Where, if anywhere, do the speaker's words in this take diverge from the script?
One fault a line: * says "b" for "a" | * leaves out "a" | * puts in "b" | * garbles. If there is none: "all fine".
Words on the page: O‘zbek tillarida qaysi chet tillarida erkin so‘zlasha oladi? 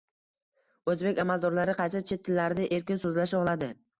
* says "amaldorlari" for "tillarida"